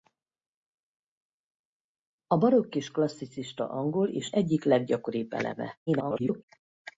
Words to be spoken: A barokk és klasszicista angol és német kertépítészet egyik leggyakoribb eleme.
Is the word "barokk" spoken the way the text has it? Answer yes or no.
yes